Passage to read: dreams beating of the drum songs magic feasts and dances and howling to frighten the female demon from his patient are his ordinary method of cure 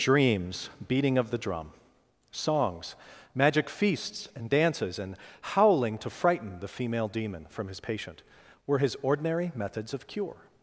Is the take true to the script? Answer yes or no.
no